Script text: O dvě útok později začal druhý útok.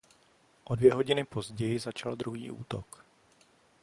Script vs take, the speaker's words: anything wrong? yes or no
yes